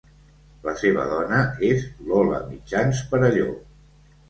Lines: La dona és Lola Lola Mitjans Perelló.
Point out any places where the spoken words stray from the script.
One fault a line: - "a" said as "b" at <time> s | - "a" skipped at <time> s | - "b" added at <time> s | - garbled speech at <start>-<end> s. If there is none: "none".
- "seva" added at 0.8 s
- "Lola" skipped at 2.4 s